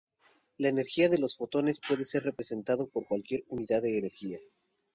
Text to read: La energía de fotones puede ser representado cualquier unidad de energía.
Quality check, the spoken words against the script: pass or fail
fail